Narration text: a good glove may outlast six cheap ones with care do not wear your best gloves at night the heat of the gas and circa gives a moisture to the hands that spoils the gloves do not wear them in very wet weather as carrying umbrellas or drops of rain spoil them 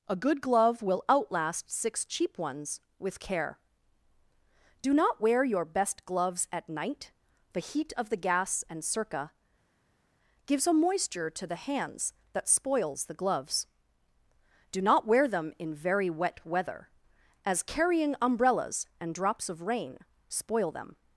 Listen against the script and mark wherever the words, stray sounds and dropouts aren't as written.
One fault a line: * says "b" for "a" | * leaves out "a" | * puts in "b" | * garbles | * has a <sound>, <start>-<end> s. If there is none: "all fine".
* says "will" for "may"
* says "and" for "or"